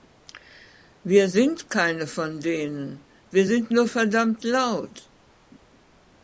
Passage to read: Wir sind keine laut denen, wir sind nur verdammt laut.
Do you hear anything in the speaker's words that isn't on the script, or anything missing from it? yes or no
yes